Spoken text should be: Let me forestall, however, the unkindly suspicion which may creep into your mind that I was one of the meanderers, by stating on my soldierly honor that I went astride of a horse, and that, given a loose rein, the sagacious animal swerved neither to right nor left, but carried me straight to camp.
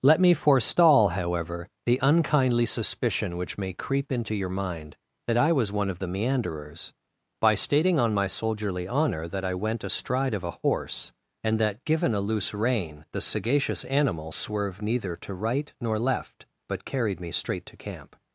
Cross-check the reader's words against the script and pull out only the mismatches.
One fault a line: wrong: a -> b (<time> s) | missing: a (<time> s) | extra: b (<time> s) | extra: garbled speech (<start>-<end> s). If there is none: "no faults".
no faults